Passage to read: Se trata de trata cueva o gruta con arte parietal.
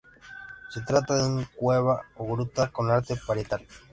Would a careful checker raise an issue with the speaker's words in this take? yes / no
yes